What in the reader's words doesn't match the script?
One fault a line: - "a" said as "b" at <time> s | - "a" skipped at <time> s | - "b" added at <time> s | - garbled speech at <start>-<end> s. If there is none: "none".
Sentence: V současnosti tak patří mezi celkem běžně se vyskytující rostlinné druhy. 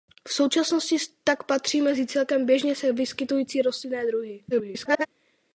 - garbled speech at 4.5-5.1 s